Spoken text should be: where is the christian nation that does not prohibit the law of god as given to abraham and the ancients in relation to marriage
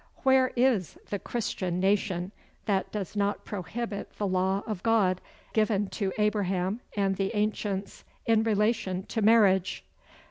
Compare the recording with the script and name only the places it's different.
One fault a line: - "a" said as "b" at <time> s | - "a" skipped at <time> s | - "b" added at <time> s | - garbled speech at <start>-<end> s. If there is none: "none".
- "as" skipped at 5.2 s